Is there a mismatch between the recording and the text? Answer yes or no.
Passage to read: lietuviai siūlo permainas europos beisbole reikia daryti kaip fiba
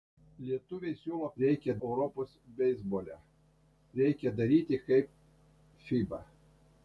yes